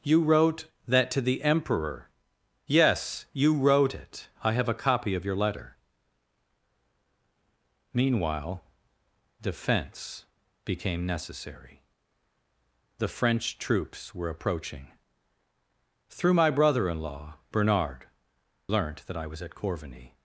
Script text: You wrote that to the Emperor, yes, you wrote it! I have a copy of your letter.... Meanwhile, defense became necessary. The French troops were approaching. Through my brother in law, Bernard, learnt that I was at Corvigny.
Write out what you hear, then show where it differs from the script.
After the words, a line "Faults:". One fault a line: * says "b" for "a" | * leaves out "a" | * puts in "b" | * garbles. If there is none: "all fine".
You wrote that to the Emperor, yes, you wrote it! I have a copy of your letter.... Meanwhile, defense became necessary. The French troops were approaching. Through my brother in law, Bernard, learnt that I was at Corvigny.
Faults:
all fine